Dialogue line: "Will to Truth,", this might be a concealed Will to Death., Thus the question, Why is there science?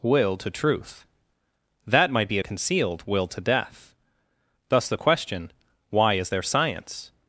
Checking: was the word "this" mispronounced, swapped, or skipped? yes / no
yes